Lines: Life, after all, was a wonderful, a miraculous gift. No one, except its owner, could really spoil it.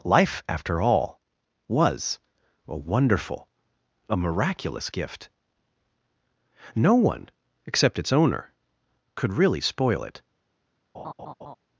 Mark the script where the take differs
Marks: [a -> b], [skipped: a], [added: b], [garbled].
Life, after all, was a wonderful, a miraculous gift. No one, except its owner, could really spoil it.